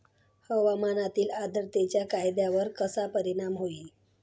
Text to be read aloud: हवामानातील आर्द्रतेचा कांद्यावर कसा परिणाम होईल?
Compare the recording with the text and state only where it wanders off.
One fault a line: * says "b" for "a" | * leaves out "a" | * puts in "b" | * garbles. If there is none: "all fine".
all fine